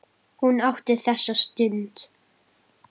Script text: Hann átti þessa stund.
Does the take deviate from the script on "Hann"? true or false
true